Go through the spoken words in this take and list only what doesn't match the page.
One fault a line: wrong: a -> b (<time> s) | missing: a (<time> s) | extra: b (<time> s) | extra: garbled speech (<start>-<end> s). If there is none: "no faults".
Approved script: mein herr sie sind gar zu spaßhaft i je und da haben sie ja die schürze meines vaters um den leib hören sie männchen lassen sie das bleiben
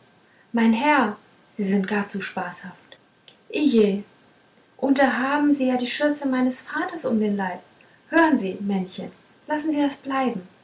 no faults